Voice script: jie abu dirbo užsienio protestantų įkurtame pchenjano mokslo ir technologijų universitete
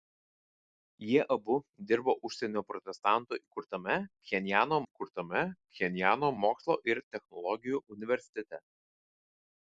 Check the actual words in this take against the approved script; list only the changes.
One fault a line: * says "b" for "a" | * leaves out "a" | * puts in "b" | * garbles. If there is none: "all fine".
* puts in "įkurtame pchenjano"